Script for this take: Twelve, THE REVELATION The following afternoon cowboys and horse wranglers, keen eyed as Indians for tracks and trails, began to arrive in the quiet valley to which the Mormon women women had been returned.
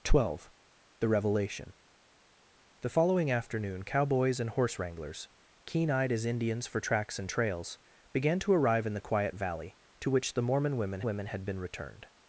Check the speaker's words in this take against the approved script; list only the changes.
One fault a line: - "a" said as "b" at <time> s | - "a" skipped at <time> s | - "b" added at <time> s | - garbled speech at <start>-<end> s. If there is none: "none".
none